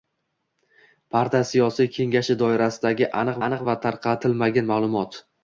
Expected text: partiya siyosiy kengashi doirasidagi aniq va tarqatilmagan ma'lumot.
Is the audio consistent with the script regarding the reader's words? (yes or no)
no